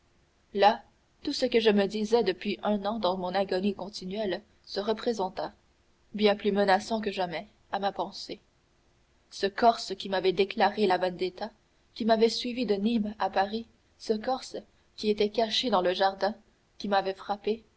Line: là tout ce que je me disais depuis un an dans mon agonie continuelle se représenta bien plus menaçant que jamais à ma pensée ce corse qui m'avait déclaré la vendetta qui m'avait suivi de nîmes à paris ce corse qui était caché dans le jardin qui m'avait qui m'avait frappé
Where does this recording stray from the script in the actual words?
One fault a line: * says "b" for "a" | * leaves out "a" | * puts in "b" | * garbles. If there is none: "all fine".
* leaves out "qui m'avait"